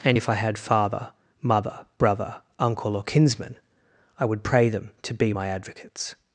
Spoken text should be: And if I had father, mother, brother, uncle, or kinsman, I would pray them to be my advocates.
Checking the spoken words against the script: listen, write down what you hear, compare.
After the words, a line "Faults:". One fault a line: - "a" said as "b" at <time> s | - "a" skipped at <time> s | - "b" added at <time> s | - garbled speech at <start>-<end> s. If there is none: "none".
And if I had father, mother, brother, uncle, or kinsman, I would pray them to be my advocates.
Faults:
none